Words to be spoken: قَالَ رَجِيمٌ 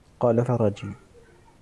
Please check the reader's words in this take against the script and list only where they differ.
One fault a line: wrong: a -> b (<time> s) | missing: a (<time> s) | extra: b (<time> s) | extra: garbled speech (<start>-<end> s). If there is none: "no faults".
no faults